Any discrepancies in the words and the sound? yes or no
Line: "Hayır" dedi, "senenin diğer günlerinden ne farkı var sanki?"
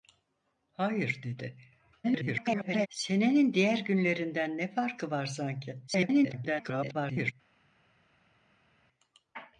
yes